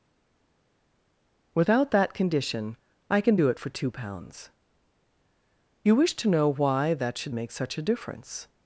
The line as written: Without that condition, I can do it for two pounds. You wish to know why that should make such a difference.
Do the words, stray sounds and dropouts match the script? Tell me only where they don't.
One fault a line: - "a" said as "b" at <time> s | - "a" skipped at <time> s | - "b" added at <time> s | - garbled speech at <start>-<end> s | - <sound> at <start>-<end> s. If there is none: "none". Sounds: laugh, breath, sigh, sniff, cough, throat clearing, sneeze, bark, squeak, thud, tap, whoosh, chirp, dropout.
none